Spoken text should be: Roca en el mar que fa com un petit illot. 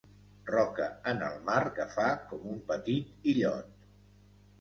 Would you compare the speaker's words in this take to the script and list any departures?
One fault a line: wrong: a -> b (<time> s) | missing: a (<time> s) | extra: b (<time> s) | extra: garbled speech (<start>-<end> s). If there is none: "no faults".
no faults